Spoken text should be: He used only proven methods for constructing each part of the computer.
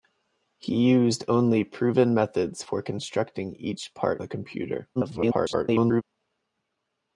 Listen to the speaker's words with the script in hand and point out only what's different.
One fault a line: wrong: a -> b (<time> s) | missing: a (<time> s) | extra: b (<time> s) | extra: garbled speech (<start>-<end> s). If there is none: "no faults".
missing: of (4.2 s)
extra: garbled speech (5.0-6.0 s)